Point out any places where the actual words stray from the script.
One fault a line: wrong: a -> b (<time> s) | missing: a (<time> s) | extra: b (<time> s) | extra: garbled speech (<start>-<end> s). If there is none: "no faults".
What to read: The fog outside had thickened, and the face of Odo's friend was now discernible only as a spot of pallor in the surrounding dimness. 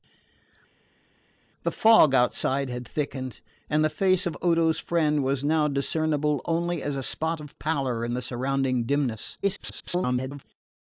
extra: garbled speech (9.4-10.4 s)